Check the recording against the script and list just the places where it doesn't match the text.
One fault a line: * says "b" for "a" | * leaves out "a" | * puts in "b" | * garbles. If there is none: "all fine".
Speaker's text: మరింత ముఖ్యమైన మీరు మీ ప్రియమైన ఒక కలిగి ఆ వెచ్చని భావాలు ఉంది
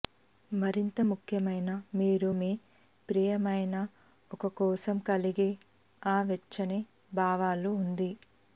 * puts in "కోసం"